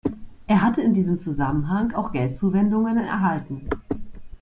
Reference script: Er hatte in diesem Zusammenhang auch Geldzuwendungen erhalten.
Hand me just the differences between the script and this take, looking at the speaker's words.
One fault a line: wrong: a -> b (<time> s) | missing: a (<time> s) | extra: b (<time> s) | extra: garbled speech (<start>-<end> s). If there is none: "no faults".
no faults